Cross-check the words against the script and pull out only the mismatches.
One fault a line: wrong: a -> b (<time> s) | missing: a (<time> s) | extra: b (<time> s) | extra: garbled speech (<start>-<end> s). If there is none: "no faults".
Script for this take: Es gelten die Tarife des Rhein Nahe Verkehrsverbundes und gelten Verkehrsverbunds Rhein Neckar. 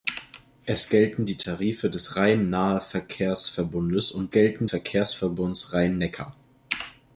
no faults